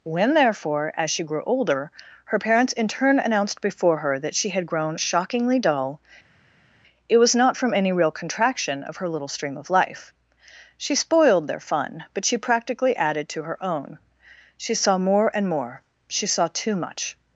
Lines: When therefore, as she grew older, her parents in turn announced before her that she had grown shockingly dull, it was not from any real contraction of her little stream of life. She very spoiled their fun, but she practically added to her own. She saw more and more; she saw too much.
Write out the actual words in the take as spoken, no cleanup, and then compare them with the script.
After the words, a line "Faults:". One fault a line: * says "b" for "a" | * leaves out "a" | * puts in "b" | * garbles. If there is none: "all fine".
When therefore, as she grew older, her parents in turn announced before her that she had grown shockingly dull, it was not from any real contraction of her little stream of life. She spoiled their fun, but she practically added to her own. She saw more and more; she saw too much.
Faults:
* leaves out "very"